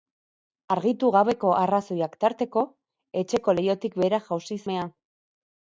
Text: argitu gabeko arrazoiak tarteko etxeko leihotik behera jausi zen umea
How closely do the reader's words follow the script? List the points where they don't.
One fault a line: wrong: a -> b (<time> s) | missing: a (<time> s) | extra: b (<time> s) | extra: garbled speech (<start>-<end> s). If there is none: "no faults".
missing: zen (4.6 s)